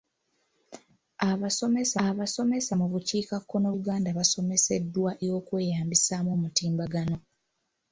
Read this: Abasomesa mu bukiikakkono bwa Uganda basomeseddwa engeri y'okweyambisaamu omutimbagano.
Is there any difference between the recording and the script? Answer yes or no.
yes